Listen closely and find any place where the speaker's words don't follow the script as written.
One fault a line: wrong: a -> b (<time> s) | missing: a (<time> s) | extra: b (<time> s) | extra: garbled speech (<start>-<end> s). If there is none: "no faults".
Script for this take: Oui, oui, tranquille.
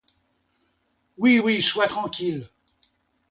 extra: sois (1.6 s)